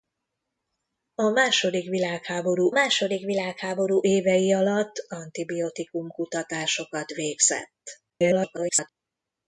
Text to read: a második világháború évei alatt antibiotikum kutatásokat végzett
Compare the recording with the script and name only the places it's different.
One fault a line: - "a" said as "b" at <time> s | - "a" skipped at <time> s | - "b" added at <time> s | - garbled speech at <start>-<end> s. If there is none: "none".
- "második világháború" added at 2.7 s
- garbled speech at 8.1-8.9 s